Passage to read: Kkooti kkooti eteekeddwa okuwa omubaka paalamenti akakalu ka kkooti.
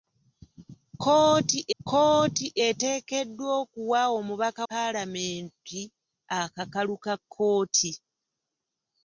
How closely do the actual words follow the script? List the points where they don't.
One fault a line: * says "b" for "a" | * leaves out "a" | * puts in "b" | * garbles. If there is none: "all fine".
all fine